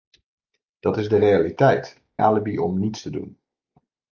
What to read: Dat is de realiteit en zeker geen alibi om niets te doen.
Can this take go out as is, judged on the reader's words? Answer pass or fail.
fail